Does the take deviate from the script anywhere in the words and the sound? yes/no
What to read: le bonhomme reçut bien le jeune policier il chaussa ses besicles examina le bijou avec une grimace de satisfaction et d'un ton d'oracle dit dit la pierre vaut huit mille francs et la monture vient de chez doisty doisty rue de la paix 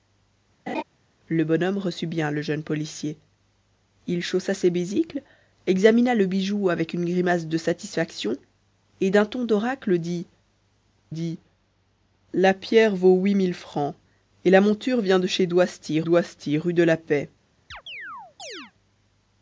yes